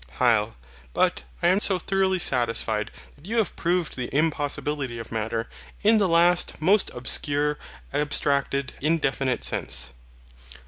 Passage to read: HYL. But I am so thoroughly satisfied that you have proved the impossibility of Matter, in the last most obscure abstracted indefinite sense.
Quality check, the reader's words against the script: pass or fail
pass